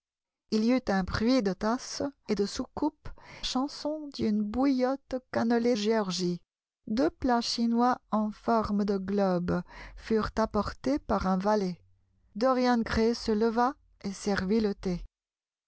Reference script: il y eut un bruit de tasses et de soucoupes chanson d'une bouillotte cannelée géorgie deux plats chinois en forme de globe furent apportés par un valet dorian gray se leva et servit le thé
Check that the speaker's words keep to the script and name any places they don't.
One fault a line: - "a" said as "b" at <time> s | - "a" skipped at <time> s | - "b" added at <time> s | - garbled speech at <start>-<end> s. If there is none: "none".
none